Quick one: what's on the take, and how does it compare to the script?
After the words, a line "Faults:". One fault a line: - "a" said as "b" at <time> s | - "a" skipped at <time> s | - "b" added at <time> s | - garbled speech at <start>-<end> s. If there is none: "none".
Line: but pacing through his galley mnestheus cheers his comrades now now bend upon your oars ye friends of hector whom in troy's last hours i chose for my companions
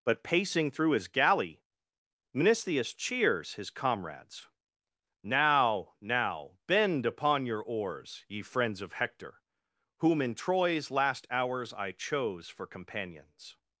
but pacing through his galley mnestheus cheers his comrades now now bend upon your oars ye friends of hector whom in troy's last hours i chose for companions
Faults:
- "my" skipped at 12.7 s